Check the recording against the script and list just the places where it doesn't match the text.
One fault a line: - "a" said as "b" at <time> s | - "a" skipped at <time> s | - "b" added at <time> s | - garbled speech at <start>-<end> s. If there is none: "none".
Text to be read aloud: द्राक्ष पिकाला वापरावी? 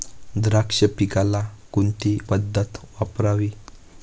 - "कोणती पद्धत" added at 1.7 s